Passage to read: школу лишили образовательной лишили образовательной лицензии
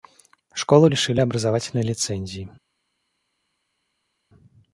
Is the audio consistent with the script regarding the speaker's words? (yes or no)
no